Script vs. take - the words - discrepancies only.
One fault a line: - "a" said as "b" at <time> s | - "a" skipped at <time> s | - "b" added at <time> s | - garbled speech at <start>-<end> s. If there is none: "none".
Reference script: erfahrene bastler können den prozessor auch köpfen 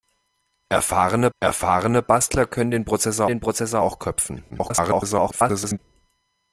- "erfahrene" added at 1.4 s
- "den prozessor" added at 3.3 s
- garbled speech at 4.5-5.8 s